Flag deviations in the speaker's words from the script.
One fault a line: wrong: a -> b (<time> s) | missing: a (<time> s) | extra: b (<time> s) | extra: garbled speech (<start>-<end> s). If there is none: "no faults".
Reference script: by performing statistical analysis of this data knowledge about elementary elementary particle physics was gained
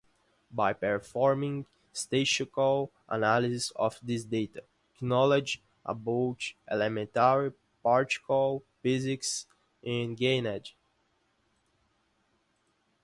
missing: elementary (7.5 s)
wrong: was -> is (9.8 s)